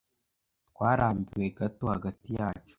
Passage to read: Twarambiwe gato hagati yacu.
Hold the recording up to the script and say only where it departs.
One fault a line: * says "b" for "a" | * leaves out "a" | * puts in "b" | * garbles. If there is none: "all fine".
all fine